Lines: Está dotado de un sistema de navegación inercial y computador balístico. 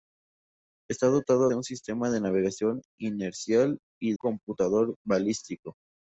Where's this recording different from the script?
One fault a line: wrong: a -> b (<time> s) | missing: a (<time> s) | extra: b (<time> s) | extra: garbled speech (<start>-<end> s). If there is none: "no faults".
no faults